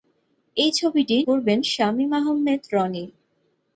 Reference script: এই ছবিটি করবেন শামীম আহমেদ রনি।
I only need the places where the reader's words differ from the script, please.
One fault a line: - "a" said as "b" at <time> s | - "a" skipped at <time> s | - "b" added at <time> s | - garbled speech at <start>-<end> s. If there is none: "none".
none